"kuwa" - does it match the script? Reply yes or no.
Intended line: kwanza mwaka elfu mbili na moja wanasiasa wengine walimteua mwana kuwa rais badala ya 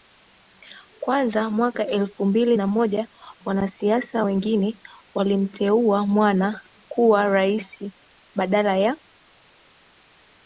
yes